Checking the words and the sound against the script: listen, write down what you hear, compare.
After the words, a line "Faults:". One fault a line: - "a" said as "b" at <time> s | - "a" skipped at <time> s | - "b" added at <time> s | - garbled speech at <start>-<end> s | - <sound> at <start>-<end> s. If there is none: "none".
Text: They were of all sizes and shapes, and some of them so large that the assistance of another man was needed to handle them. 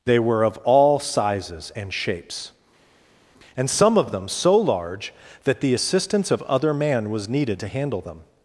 They were of all sizes and shapes, and some of them so large that the assistance of other man was needed to handle them.
Faults:
- "another" said as "other" at 6.4 s